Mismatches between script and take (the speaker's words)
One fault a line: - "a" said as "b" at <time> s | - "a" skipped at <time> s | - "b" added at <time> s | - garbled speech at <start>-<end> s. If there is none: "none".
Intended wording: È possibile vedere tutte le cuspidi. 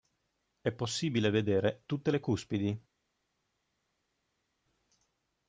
none